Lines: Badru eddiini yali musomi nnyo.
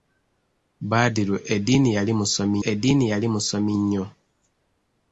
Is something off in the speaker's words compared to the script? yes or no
yes